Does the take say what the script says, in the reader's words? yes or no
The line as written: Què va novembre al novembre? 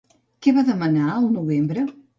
no